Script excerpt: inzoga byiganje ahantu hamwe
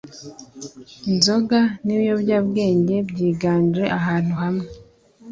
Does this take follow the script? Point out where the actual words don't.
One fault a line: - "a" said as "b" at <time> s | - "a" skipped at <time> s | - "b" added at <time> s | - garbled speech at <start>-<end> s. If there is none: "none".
- "n'ibiyobyabwenge" added at 1.8 s